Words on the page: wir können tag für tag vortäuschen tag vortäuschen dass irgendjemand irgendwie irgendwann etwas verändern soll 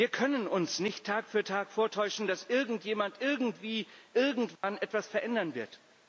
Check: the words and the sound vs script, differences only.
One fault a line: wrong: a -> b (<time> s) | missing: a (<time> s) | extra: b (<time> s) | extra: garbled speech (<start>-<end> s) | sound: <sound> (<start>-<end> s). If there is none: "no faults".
wrong: tag für -> uns nicht (0.5 s)
wrong: vortäuschen -> für (1.3 s)
sound: dropout (4.6-4.6 s)
wrong: soll -> wird (5.5 s)